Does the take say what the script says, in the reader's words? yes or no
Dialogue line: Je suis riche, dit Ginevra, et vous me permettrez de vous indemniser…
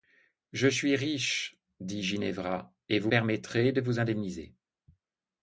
no